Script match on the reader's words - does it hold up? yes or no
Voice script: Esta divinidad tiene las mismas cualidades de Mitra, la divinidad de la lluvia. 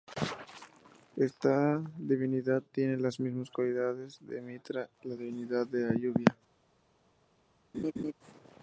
yes